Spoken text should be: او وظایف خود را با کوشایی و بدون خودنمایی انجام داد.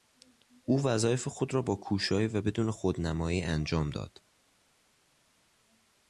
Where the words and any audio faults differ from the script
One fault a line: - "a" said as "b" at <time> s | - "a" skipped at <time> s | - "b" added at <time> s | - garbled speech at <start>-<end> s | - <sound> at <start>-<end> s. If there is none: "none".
none